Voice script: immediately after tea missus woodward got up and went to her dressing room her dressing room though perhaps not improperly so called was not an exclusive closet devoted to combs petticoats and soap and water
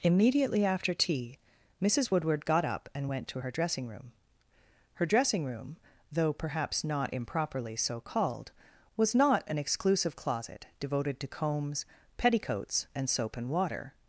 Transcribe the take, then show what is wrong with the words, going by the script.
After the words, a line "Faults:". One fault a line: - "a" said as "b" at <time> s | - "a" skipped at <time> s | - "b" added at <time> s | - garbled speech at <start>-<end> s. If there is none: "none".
immediately after tea missus woodward got up and went to her dressing room her dressing room though perhaps not improperly so called was not an exclusive closet devoted to combs petticoats and soap and water
Faults:
none